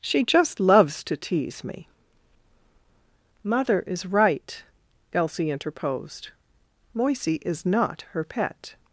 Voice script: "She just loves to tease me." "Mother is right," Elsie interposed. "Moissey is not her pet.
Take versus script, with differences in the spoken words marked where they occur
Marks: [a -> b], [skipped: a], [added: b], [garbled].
"She just loves to tease me." "Mother is right," Elsie interposed. "Moissey is not her pet.